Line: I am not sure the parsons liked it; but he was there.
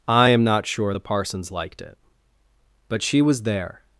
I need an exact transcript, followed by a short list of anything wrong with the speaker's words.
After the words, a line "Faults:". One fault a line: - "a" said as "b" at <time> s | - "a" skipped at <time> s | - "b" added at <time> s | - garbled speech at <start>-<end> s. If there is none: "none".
I am not sure the parsons liked it; but she was there.
Faults:
- "he" said as "she" at 3.0 s